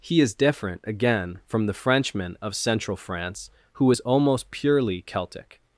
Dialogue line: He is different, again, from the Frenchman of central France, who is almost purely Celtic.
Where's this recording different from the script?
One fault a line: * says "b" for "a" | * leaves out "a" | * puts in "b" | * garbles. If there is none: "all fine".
all fine